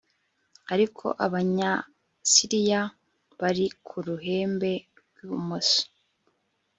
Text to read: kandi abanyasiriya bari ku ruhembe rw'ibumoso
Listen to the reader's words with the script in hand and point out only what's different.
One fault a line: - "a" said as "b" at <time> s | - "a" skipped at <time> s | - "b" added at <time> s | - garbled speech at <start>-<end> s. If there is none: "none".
- "kandi" said as "ariko" at 0.7 s